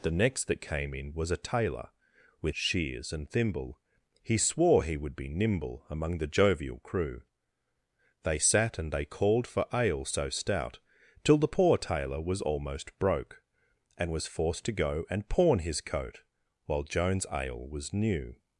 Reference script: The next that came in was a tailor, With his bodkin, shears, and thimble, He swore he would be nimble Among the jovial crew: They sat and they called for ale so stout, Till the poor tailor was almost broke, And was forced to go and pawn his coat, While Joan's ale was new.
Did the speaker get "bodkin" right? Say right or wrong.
wrong